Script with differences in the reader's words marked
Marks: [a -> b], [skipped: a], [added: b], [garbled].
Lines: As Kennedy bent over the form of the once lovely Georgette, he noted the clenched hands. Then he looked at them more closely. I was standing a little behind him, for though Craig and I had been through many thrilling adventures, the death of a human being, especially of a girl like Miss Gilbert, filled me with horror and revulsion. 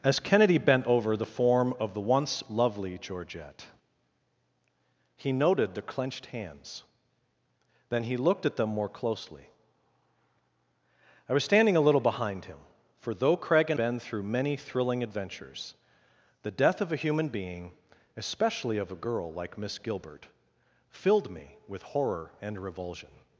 As Kennedy bent over the form of the once lovely Georgette, he noted the clenched hands. Then he looked at them more closely. I was standing a little behind him, for though Craig and [skipped: I had] been through many thrilling adventures, the death of a human being, especially of a girl like Miss Gilbert, filled me with horror and revulsion.